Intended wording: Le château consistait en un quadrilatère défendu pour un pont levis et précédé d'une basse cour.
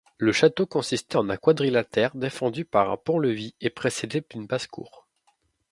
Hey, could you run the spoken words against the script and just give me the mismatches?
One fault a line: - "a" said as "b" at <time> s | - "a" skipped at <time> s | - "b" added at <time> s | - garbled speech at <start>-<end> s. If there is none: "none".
- "pour" said as "par" at 2.6 s